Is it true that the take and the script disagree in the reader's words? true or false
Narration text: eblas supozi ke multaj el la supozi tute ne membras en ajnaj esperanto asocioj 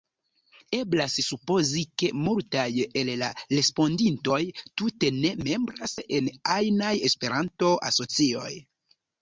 true